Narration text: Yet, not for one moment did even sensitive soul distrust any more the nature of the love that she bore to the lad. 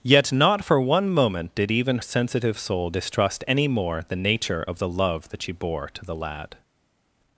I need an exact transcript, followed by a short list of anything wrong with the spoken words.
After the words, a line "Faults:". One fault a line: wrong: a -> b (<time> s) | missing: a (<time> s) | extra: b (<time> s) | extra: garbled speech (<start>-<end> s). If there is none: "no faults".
Yet, not for one moment did even sensitive soul distrust any more the nature of the love that she bore to the lad.
Faults:
no faults